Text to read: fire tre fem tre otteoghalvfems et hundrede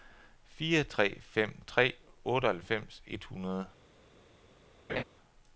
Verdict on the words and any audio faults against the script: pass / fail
fail